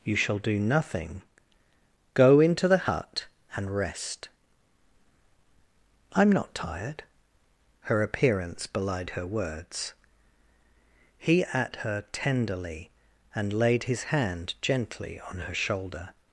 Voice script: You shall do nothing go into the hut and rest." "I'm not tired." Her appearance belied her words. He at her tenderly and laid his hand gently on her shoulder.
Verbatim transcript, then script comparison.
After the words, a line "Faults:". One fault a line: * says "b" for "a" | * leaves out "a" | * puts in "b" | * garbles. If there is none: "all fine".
You shall do nothing go into the hut and rest." "I'm not tired." Her appearance belied her words. He at her tenderly and laid his hand gently on her shoulder.
Faults:
all fine